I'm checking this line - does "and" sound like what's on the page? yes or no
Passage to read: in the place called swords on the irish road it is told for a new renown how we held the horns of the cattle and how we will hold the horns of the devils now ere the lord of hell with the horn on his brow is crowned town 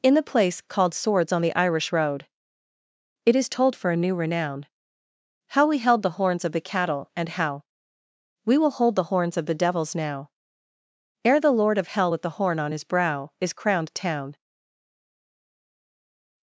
yes